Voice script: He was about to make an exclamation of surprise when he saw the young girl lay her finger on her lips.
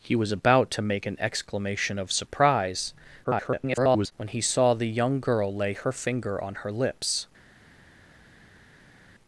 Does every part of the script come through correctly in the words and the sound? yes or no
no